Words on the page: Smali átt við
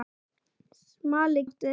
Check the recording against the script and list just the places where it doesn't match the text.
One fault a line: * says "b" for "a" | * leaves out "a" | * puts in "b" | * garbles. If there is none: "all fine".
all fine